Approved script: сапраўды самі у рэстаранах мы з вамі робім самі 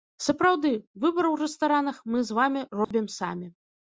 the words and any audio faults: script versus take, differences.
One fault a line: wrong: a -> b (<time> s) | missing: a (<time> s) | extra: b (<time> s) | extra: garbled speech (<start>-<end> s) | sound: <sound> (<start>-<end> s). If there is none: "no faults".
wrong: самі -> выбар (1.0 s)
sound: dropout (2.8-2.9 s)